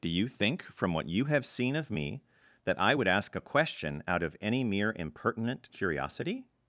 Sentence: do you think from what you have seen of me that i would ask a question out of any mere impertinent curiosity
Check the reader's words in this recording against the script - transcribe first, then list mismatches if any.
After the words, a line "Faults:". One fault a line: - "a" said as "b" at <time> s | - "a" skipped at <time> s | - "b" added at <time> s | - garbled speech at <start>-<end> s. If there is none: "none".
do you think from what you have seen of me that i would ask a question out of any mere impertinent curiosity
Faults:
none